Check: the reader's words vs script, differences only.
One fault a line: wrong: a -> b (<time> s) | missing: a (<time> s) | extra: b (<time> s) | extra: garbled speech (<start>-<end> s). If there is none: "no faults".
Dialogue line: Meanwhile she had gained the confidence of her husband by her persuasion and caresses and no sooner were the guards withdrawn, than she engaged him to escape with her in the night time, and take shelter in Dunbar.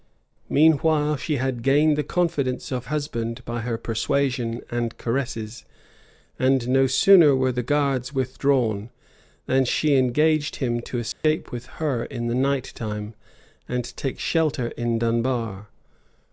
missing: her (2.9 s)